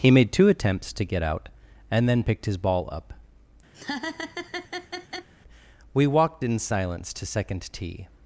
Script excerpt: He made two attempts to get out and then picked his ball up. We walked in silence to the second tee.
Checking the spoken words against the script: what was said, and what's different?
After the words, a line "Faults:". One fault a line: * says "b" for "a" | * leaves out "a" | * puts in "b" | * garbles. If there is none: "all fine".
He made two attempts to get out and then picked his ball up. We walked in silence to second tee.
Faults:
* leaves out "the"